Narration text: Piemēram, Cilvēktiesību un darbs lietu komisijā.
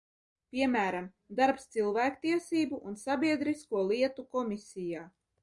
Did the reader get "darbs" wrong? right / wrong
wrong